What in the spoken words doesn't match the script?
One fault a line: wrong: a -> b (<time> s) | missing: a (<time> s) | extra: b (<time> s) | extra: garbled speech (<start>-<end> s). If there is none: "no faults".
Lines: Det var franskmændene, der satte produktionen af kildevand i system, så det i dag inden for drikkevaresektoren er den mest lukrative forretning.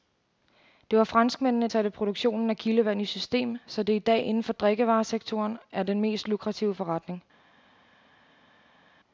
missing: der (1.7 s)